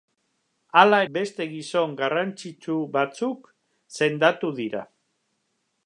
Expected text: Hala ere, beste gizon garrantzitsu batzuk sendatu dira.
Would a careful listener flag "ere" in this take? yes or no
yes